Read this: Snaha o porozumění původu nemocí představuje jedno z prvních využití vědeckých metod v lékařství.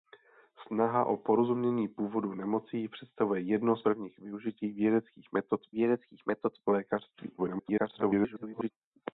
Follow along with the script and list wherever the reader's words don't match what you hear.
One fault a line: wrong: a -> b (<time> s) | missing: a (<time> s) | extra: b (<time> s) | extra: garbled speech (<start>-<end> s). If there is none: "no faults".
extra: vědeckých metod (5.7 s)
extra: garbled speech (7.4-8.7 s)